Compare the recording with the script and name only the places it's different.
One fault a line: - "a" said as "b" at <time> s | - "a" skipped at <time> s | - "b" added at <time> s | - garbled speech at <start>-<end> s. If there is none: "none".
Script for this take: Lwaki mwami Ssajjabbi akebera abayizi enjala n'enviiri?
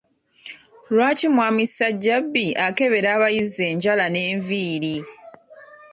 none